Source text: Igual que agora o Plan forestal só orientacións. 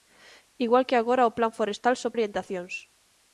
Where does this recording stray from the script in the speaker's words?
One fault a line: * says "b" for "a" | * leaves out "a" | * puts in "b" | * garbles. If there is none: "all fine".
all fine